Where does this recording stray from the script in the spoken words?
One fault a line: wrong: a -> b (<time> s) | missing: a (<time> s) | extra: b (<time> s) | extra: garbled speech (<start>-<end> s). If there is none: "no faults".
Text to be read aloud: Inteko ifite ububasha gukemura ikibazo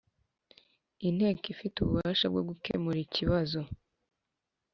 extra: bwo (2.3 s)